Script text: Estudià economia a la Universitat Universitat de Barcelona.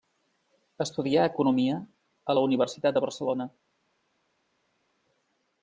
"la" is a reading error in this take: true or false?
false